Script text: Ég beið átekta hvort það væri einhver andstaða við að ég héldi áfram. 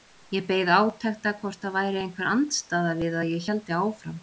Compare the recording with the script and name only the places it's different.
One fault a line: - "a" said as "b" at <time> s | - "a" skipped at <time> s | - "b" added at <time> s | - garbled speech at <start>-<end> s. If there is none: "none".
none